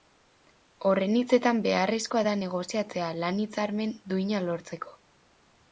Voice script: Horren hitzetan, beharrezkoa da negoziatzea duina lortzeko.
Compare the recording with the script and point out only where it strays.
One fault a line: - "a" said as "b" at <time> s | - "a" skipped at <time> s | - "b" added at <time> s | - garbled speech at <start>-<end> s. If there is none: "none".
- "lan hitzarmen" added at 3.2 s